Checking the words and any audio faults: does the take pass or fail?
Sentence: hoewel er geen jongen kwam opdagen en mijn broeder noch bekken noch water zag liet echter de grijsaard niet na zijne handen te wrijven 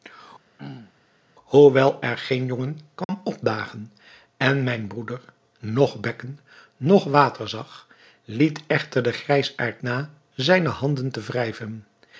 fail